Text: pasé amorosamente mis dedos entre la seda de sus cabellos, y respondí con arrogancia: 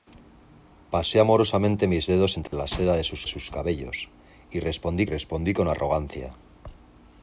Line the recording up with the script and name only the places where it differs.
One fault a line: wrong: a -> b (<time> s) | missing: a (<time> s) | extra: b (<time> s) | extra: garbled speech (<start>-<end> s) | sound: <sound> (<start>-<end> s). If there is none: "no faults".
sound: dropout (2.5-2.5 s)
extra: sus (3.3 s)
extra: respondí (5.1 s)